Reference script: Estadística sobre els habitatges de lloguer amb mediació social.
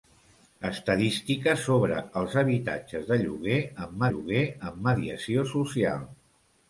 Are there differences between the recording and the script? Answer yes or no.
yes